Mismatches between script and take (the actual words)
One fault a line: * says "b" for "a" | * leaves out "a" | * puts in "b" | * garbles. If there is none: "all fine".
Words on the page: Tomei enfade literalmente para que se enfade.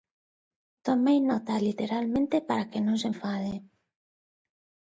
* says "nota" for "enfade"
* puts in "non"